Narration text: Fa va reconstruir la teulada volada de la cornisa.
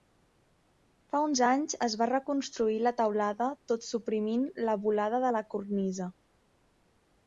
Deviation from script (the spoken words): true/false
true